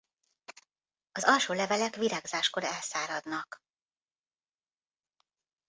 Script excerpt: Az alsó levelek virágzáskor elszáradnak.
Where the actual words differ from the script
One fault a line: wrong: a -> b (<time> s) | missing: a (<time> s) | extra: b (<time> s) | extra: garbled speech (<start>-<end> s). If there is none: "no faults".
no faults